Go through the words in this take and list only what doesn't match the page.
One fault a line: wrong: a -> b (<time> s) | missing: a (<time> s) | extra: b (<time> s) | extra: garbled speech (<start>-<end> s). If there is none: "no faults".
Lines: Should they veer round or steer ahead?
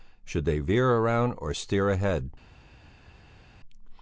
no faults